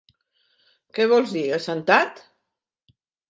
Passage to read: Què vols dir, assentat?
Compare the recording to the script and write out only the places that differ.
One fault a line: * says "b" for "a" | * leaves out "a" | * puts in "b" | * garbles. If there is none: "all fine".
all fine